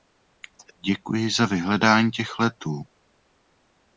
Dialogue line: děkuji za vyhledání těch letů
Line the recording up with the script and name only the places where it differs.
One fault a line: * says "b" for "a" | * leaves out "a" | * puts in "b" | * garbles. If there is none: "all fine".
all fine